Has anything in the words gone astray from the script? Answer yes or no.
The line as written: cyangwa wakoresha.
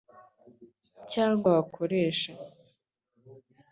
no